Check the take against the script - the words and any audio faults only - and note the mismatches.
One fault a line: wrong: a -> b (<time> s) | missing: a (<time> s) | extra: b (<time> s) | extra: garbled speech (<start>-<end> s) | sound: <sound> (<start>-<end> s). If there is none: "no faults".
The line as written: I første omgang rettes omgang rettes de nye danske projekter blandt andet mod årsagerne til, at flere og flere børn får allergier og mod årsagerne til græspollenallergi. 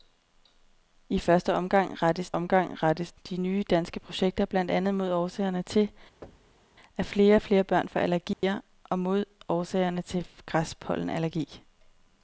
sound: thud (6.2-6.7 s)
sound: dropout (8.3-8.4 s)